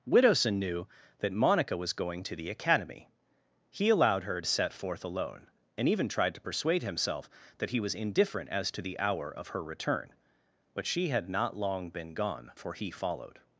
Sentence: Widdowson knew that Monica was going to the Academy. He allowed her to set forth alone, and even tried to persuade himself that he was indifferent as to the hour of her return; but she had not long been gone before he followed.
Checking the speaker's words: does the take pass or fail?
fail